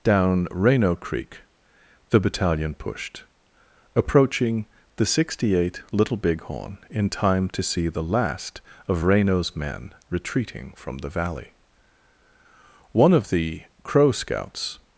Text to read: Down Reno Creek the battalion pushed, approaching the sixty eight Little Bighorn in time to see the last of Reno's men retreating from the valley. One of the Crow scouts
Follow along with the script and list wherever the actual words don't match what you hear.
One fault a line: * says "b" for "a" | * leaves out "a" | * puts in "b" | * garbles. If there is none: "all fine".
all fine